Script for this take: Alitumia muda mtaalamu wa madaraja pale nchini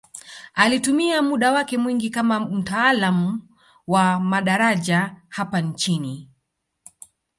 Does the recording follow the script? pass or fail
fail